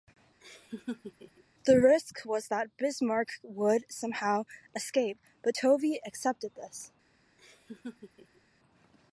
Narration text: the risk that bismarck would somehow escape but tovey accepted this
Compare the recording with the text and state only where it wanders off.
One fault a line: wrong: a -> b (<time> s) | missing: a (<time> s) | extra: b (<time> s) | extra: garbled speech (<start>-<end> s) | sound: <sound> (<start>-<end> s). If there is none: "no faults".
sound: laugh (0.4-1.4 s)
extra: was (2.2 s)
sound: laugh (7.4-8.4 s)